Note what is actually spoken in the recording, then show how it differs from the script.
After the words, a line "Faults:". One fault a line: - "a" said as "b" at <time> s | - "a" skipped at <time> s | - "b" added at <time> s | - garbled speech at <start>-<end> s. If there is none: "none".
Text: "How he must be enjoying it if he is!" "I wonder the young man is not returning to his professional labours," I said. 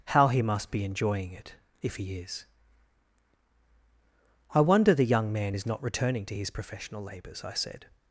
"How he must be enjoying it if he is!" "I wonder the young man is not returning to his professional labours," I said.
Faults:
none